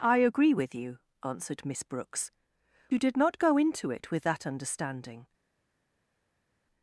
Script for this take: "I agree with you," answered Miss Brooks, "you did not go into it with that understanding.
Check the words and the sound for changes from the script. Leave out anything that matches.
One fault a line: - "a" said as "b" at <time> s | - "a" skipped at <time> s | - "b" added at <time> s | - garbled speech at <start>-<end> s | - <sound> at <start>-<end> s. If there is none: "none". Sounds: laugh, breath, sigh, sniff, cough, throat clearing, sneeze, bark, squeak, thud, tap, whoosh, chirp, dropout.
none